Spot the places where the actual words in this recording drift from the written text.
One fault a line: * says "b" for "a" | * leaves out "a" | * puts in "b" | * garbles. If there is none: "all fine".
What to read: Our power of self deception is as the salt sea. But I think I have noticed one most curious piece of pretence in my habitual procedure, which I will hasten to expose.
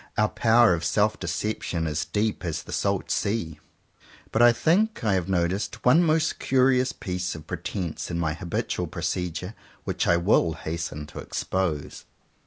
* puts in "deep"